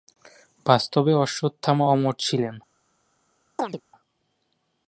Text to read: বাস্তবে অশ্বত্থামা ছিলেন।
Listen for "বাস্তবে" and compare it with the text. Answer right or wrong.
right